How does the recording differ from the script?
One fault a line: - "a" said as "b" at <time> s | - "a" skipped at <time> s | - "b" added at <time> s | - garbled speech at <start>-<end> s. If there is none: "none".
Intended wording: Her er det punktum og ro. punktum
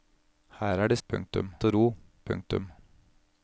none